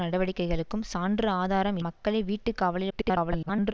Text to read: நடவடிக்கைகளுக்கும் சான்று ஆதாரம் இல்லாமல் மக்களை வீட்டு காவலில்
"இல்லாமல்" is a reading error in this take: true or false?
true